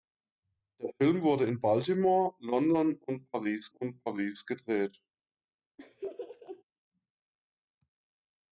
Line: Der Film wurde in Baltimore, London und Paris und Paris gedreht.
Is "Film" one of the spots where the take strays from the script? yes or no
no